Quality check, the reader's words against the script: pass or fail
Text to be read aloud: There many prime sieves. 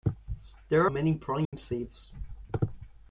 pass